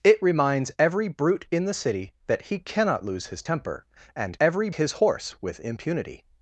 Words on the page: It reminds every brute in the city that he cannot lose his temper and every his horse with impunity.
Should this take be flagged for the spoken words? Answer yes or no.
no